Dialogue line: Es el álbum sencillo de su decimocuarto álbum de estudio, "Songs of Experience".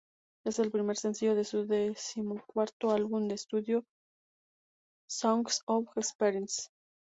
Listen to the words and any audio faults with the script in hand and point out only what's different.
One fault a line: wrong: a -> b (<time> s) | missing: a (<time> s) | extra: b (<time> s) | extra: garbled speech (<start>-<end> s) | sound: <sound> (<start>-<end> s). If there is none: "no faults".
wrong: álbum -> primer (0.7 s)